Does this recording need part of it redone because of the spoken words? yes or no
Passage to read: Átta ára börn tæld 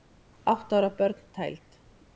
no